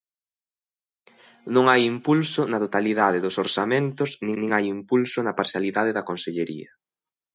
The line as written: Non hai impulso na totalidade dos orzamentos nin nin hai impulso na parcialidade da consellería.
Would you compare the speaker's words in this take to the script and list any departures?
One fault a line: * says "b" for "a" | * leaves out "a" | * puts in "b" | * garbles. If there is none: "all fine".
all fine